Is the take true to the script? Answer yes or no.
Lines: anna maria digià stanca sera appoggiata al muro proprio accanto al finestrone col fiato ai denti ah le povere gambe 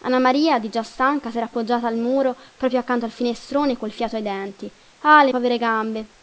yes